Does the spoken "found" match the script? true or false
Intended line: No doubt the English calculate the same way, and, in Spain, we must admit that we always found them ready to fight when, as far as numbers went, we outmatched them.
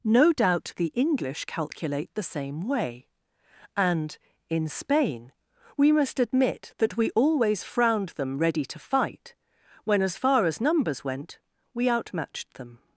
false